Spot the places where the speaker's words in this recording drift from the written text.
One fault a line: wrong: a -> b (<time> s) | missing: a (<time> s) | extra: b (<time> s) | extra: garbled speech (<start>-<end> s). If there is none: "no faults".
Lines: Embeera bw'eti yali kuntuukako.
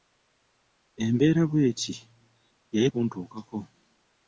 no faults